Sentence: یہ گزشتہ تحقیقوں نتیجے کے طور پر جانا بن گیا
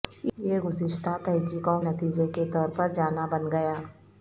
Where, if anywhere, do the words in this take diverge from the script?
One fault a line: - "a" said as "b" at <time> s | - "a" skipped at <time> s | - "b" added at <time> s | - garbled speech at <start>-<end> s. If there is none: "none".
none